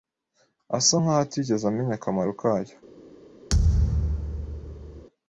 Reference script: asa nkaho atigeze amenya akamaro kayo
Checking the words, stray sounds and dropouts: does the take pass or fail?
fail